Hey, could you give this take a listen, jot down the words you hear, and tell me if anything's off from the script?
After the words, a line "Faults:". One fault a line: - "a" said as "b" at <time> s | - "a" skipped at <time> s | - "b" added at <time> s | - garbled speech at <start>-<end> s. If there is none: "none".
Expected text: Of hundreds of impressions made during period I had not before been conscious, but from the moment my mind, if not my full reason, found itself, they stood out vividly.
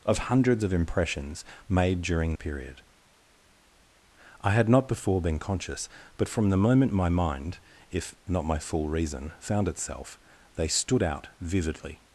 Of hundreds of impressions made during period I had not before been conscious, but from the moment my mind, if not my full reason, found itself, they stood out vividly.
Faults:
none